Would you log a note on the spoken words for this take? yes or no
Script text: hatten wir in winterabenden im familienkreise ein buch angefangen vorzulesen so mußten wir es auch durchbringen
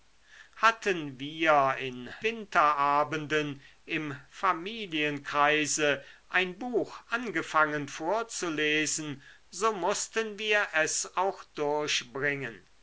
no